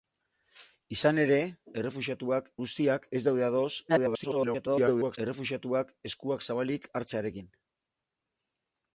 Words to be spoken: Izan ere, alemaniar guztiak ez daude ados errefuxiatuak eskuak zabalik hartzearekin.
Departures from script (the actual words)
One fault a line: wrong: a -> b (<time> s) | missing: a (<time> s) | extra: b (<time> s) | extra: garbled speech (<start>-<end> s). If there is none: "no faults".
wrong: alemaniar -> errefuxiatuak (1.8 s)
extra: garbled speech (3.9-5.2 s)